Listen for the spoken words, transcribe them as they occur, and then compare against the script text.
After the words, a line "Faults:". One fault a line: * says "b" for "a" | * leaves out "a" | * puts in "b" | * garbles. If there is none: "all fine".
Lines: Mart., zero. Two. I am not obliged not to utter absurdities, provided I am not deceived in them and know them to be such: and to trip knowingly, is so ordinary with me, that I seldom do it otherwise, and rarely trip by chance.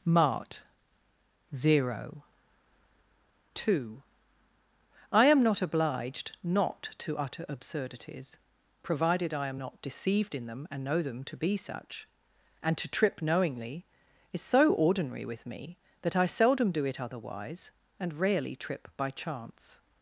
Mart., zero. Two. I am not obliged not to utter absurdities, provided I am not deceived in them and know them to be such: and to trip knowingly, is so ordinary with me, that I seldom do it otherwise, and rarely trip by chance.
Faults:
all fine